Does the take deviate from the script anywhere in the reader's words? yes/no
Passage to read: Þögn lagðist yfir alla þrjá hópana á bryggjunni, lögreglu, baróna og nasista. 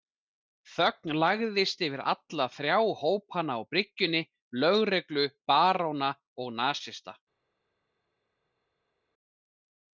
no